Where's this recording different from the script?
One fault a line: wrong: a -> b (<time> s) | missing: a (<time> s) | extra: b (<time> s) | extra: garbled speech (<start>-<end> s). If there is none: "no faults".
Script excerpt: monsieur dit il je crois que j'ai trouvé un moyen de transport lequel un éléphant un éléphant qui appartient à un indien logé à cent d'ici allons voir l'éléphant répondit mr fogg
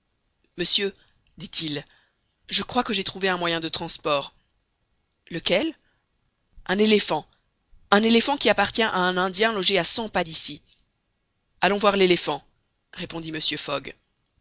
extra: pas (10.1 s)